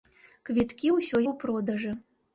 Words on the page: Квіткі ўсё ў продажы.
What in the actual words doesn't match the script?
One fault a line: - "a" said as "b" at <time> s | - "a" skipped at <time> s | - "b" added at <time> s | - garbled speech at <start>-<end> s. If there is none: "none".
none